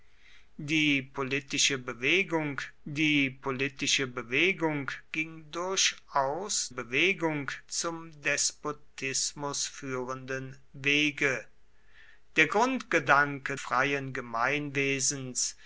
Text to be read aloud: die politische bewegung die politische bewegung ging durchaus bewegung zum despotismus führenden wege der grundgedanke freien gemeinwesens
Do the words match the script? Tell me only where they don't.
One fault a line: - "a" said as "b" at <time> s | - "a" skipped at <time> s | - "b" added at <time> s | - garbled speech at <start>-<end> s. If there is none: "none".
none